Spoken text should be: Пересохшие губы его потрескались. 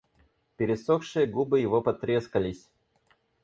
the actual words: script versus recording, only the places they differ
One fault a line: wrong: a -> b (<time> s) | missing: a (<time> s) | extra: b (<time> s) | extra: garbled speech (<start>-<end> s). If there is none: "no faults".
no faults